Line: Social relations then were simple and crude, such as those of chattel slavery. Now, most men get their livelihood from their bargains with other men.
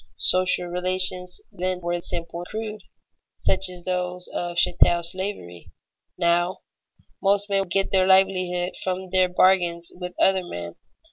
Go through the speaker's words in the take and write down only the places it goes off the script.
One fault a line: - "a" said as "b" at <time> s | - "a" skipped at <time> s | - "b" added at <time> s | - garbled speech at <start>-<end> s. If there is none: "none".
- "and" skipped at 2.4 s